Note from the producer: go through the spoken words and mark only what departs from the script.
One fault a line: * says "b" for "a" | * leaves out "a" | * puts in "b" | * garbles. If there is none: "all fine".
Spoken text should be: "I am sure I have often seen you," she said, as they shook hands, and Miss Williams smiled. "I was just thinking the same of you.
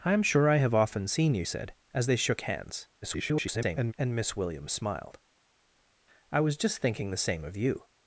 * leaves out "she"
* garbles